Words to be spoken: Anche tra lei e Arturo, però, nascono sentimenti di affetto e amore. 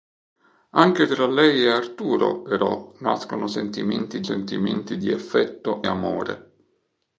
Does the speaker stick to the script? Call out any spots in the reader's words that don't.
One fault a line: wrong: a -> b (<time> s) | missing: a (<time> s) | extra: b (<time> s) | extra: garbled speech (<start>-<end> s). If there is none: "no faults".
extra: sentimenti (4.2 s)
missing: e (5.9 s)